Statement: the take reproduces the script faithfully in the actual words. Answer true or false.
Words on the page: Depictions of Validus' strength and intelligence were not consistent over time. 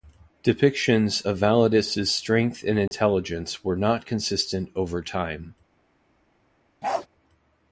true